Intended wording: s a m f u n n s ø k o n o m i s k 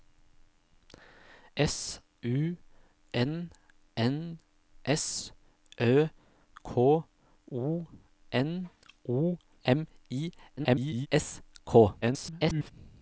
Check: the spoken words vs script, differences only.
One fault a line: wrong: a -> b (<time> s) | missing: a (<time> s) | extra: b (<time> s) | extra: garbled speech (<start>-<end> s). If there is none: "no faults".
missing: a m f (2.0 s)
extra: garbled speech (10.6-11.1 s)
extra: garbled speech (12.0-12.7 s)